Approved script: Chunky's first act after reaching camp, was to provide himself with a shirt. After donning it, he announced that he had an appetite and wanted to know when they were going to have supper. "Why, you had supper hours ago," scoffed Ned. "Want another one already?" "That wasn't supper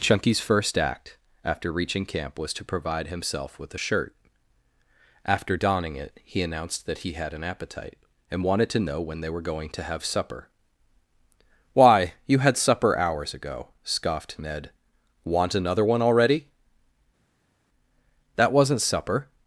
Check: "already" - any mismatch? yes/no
no